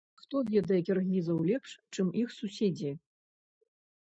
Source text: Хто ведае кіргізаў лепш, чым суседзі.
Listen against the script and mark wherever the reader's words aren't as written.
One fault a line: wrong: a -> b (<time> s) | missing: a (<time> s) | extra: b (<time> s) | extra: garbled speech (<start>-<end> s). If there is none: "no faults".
extra: іх (2.2 s)